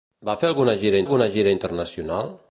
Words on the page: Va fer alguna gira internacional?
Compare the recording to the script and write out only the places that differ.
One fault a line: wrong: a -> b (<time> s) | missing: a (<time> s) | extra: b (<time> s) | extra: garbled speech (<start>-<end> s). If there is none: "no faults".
extra: alguna gira (1.0 s)